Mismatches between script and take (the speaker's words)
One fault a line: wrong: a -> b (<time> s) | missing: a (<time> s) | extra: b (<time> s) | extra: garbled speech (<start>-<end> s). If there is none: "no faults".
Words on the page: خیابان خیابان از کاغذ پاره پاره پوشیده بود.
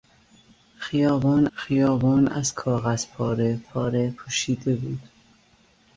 no faults